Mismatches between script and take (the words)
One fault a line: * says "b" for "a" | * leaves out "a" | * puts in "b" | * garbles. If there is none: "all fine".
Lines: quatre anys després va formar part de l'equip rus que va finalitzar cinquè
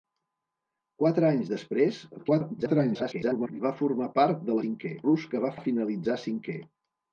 * garbles
* says "cinquè" for "l'equip"
* puts in "va"